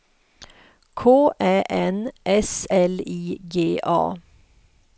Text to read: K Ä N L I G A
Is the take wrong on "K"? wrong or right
right